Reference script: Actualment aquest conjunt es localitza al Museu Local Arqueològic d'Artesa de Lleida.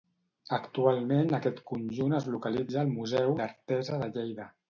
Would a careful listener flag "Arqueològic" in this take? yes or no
yes